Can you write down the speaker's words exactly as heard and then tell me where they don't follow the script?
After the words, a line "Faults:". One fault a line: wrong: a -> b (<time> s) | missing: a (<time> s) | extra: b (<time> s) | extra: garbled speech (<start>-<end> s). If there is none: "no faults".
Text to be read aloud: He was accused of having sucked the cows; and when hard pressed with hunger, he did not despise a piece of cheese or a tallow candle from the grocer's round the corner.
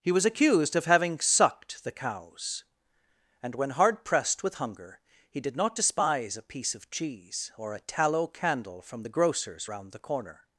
He was accused of having sucked the cows; and when hard pressed with hunger, he did not despise a piece of cheese or a tallow candle from the grocer's round the corner.
Faults:
no faults